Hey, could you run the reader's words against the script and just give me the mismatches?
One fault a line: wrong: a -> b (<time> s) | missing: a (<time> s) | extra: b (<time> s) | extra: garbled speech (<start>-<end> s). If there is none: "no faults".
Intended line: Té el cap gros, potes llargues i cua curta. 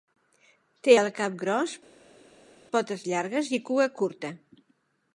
no faults